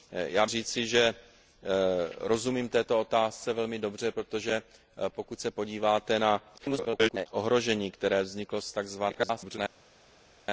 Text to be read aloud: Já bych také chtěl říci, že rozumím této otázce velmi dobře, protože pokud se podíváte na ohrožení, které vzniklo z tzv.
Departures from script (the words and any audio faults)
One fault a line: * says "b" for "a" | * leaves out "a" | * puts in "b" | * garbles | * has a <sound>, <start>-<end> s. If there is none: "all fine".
* leaves out "bych také chtěl"
* garbles
* garbles